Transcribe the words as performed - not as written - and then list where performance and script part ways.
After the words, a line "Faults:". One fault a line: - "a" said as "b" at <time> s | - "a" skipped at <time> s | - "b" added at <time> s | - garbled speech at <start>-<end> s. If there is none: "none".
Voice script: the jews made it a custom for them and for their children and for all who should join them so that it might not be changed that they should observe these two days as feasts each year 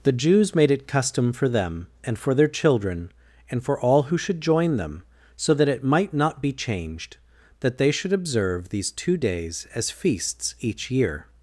the jews made it custom for them and for their children and for all who should join them so that it might not be changed that they should observe these two days as feasts each year
Faults:
- "a" skipped at 0.9 s